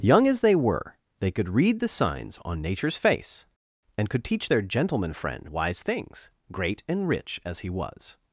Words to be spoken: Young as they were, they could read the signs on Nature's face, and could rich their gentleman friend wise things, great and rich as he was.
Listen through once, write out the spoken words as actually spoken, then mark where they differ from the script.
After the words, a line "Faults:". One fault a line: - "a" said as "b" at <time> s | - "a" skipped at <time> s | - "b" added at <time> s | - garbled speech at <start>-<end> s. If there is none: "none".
Young as they were, they could read the signs on Nature's face, and could teach their gentleman friend wise things, great and rich as he was.
Faults:
- "rich" said as "teach" at 4.2 s